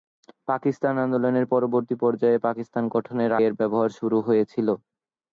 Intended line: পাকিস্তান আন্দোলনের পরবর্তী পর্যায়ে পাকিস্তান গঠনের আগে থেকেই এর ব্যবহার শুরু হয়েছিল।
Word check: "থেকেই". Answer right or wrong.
wrong